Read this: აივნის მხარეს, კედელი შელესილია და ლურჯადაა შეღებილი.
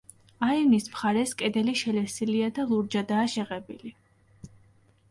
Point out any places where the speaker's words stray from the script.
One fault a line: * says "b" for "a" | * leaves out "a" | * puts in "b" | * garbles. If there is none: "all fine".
all fine